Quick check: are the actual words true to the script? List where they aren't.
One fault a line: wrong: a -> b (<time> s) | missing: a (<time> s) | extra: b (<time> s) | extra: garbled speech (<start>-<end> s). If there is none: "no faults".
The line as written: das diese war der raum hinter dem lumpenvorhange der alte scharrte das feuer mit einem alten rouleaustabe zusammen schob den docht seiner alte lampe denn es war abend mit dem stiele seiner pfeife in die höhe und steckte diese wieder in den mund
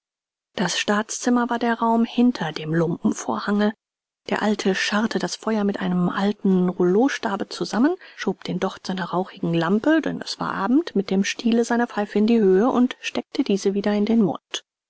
wrong: diese -> staatszimmer (0.8 s)
wrong: alte -> rauchigen (9.1 s)